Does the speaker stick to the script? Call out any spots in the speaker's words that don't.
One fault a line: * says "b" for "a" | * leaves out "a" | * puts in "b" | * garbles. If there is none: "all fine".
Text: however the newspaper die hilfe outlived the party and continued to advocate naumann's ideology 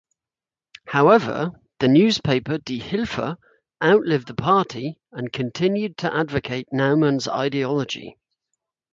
all fine